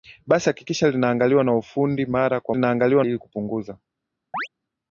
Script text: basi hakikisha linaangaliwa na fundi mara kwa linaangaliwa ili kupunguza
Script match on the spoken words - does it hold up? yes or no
yes